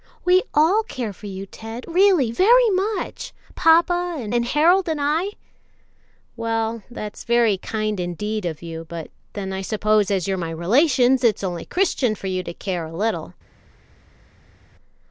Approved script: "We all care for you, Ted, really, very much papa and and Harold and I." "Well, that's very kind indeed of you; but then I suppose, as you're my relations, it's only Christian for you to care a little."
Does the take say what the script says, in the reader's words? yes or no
yes